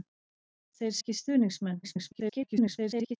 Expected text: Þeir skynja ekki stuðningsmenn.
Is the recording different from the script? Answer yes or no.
yes